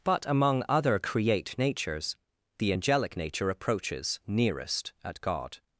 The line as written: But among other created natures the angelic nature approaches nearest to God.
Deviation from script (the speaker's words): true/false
true